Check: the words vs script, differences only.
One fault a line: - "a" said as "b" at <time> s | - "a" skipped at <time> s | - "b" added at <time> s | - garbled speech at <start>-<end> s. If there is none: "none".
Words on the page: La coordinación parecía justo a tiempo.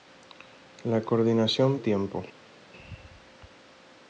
- "parecía justo" skipped at 1.8 s